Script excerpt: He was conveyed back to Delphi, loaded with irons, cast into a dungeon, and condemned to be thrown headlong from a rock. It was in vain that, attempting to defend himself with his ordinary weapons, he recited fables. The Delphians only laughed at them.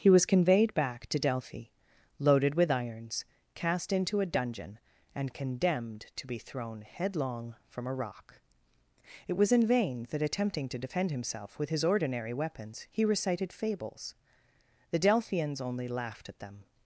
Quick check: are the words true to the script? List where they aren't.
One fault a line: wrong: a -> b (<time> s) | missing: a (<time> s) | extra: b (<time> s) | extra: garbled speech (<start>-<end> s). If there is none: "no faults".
no faults